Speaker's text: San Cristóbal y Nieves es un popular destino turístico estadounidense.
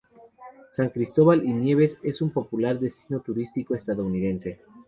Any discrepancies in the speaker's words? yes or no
no